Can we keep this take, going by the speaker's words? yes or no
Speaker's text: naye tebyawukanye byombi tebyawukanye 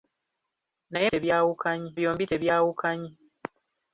yes